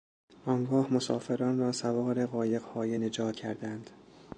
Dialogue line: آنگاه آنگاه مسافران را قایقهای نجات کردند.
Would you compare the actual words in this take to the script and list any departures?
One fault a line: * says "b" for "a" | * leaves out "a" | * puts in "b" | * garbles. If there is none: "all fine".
* leaves out "آنگاه"
* puts in "سوار"